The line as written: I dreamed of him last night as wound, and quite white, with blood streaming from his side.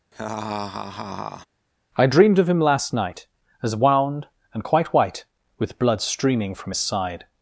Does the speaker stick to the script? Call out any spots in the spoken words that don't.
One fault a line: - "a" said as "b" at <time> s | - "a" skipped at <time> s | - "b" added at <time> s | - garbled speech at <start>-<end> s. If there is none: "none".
none